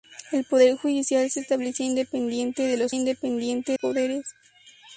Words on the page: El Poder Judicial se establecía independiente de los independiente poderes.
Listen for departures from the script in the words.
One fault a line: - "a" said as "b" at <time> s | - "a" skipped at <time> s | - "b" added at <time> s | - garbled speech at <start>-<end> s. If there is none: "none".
none